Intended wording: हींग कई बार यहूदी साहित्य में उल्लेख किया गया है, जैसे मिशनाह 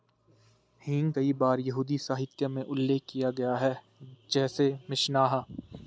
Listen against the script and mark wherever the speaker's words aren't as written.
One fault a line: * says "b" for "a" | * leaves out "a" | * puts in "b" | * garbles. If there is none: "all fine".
all fine